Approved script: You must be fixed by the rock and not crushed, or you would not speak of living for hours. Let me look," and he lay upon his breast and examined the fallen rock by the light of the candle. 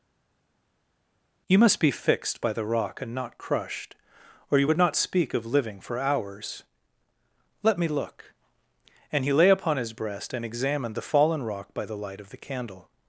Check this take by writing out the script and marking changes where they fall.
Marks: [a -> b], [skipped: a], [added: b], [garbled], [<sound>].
You must be fixed by the rock and not crushed, or you would not speak of living for hours. Let me look," and he lay upon his breast and examined the fallen rock by the light of the candle.